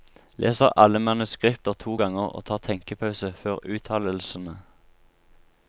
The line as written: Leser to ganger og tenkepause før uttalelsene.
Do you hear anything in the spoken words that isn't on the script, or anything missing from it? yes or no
yes